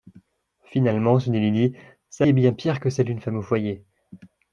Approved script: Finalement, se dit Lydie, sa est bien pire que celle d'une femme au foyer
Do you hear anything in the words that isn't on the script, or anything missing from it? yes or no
no